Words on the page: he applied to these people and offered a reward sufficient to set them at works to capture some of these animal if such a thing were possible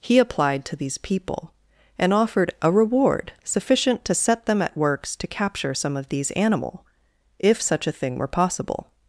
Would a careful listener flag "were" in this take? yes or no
no